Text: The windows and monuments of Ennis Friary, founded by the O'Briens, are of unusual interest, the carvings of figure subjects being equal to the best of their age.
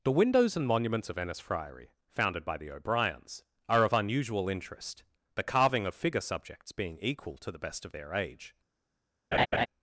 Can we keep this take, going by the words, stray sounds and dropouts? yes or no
no